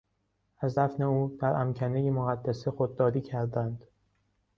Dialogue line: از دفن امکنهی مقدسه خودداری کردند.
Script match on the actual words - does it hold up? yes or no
no